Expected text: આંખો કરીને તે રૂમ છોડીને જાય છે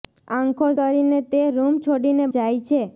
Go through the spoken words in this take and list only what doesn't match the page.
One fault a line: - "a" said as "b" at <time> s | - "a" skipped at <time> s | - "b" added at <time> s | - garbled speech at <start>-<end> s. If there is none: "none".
none